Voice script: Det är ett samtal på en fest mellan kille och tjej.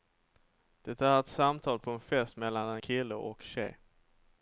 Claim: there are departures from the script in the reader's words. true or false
false